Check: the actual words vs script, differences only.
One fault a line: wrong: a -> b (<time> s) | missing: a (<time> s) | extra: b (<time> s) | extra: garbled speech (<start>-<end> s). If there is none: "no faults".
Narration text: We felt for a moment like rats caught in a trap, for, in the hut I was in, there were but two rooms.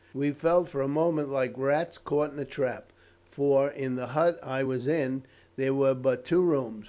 no faults